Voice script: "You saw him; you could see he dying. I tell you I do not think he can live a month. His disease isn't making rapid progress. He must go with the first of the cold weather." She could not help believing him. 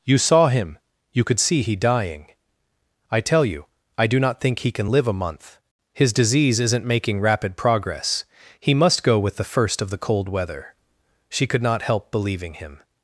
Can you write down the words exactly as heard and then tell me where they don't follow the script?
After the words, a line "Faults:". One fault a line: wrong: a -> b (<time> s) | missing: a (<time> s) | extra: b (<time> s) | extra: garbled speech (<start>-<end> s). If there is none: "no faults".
"You saw him; you could see he dying. I tell you I do not think he can live a month. His disease isn't making rapid progress. He must go with the first of the cold weather." She could not help believing him.
Faults:
no faults